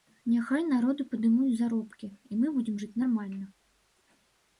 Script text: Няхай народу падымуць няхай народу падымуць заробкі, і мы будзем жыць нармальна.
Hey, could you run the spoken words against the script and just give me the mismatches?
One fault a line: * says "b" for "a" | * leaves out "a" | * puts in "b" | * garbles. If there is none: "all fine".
* leaves out "няхай народу падымуць"